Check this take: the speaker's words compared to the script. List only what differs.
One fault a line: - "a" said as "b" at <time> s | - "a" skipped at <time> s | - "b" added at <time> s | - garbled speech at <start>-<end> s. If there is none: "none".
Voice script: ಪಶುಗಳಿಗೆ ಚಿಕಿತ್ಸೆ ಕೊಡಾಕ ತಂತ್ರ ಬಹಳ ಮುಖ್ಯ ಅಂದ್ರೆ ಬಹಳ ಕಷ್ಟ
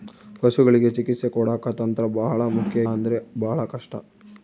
none